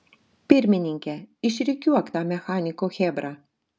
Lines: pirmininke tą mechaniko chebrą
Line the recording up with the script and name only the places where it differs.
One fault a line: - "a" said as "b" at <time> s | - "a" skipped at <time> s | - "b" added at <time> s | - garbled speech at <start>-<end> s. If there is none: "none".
- "išrikiuok" added at 1.5 s